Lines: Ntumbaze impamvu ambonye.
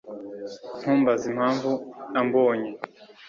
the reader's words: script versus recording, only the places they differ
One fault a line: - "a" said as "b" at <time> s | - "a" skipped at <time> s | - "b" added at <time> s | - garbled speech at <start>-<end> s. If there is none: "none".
none